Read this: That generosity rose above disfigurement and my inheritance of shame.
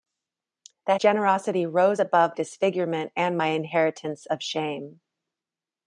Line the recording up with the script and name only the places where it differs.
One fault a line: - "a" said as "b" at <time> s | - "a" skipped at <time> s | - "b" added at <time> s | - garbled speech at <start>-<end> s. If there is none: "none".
none